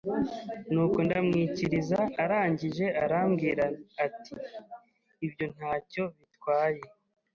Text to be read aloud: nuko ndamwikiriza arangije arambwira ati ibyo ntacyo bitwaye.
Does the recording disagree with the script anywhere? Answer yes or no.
no